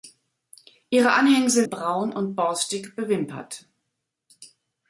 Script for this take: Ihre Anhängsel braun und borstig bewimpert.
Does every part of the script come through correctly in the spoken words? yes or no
yes